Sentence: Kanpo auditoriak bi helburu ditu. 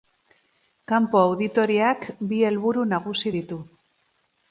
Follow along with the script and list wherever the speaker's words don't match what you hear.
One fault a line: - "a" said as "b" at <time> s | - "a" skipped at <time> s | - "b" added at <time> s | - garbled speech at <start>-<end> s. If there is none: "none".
- "nagusi" added at 3.0 s